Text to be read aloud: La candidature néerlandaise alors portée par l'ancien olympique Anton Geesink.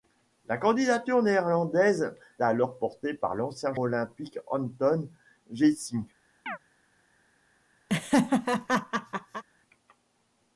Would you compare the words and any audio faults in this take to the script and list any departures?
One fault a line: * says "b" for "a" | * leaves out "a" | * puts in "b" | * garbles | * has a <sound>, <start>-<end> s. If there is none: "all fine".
* has a chirp, 6.5-6.6 s
* has a laugh, 7.9-9.4 s